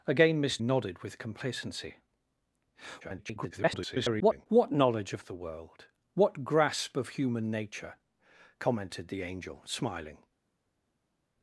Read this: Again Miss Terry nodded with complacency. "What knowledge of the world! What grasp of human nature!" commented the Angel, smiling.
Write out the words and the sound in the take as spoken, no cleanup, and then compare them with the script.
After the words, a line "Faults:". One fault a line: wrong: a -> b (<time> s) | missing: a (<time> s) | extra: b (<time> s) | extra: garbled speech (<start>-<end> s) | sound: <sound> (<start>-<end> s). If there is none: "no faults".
Again Miss Nodded with complacency. [garbled] "What knowledge of the world! What grasp of human nature!" commented the Angel, smiling.
Faults:
missing: Terry (0.6 s)
extra: garbled speech (3.0-4.5 s)